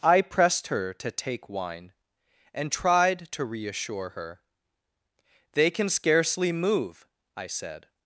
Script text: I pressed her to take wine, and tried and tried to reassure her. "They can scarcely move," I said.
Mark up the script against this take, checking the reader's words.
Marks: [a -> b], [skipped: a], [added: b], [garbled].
I pressed her to take wine, and tried [skipped: and tried] to reassure her. "They can scarcely move," I said.